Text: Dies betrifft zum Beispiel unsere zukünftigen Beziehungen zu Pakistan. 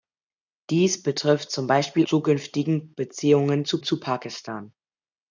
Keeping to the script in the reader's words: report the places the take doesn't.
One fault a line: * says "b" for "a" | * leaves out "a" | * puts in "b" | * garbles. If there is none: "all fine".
* leaves out "unsere"
* puts in "zu"